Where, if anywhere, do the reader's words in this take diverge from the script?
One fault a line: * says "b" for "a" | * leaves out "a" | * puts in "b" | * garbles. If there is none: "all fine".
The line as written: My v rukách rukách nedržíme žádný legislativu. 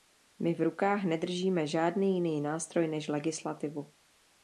* leaves out "rukách"
* puts in "jiný nástroj než"